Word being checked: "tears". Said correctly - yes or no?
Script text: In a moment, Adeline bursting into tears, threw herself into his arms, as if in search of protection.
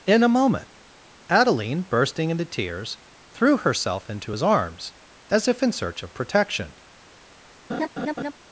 yes